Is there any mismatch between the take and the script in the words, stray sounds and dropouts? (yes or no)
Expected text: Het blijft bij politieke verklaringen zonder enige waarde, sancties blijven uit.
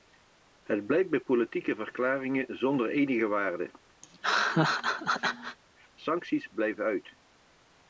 yes